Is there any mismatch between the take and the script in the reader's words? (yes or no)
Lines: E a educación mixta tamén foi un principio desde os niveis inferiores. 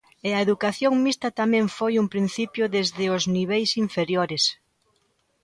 no